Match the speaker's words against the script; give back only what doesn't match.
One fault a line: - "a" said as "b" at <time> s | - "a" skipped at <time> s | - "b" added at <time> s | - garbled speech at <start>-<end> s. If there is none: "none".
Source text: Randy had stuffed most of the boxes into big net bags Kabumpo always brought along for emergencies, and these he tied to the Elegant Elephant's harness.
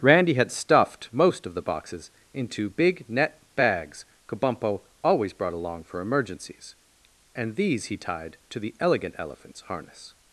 none